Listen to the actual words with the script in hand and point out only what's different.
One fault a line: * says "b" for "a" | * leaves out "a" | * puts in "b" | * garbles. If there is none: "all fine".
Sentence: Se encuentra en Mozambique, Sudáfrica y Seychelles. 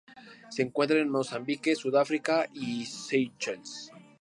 all fine